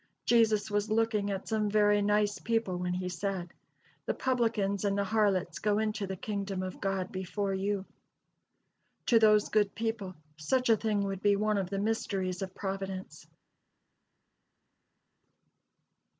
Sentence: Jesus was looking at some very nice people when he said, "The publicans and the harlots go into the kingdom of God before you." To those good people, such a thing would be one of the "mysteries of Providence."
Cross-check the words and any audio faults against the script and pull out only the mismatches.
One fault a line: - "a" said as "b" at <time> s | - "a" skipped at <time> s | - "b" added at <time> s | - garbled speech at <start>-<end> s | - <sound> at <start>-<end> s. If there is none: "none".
none